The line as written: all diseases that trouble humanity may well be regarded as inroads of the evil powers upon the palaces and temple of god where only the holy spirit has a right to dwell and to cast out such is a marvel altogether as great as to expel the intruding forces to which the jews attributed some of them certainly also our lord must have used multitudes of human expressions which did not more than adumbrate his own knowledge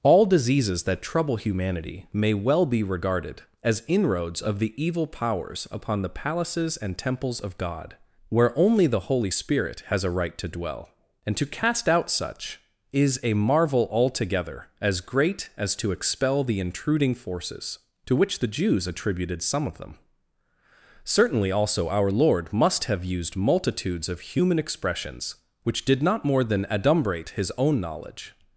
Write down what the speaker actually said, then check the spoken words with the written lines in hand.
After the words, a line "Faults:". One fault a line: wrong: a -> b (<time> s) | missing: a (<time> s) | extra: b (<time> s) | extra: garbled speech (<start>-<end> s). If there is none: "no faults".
all diseases that trouble humanity may well be regarded as inroads of the evil powers upon the palaces and temples of god where only the holy spirit has a right to dwell and to cast out such is a marvel altogether as great as to expel the intruding forces to which the jews attributed some of them certainly also our lord must have used multitudes of human expressions which did not more than adumbrate his own knowledge
Faults:
wrong: temple -> temples (7.0 s)